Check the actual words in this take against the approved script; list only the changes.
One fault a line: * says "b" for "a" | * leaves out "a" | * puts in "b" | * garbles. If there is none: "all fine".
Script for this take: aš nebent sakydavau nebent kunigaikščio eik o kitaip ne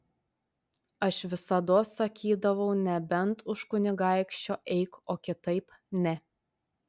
* says "visados" for "nebent"
* puts in "už"